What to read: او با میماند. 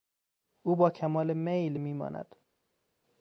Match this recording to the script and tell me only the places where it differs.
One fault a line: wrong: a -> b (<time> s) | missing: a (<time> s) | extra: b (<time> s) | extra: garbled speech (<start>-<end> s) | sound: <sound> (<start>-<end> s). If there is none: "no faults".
extra: کمال میل (0.9 s)